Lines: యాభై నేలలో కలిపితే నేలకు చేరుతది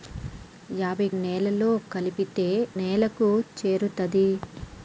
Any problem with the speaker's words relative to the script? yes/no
no